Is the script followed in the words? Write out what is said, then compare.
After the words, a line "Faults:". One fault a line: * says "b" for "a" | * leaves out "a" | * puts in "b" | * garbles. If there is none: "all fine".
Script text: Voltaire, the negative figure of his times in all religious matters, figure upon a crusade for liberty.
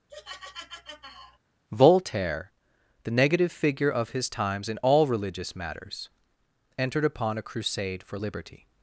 Voltaire, the negative figure of his times in all religious matters, entered upon a crusade for liberty.
Faults:
* says "entered" for "figure"